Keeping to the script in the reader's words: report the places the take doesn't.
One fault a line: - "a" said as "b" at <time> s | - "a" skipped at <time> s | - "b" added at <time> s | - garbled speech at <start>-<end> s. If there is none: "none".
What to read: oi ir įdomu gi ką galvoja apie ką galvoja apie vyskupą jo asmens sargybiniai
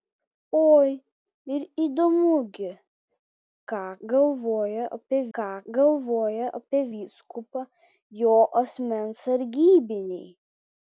none